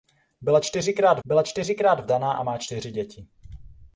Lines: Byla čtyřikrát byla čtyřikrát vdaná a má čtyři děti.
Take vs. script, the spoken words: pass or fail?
pass